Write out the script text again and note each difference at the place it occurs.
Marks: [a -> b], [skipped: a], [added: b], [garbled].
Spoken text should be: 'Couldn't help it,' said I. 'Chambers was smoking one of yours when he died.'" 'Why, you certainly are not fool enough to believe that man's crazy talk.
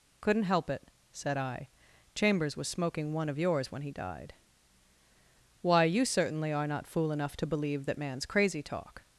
'Couldn't help it,' said I. 'Chambers was smoking one of yours when he died.'" 'Why, you certainly are not fool enough to believe that man's crazy talk.